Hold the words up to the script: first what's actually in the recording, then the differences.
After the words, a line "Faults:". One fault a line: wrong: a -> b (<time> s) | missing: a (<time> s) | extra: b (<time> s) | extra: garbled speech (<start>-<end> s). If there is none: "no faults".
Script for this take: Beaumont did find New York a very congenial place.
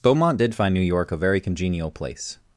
Beaumont did find New York a very congenial place.
Faults:
no faults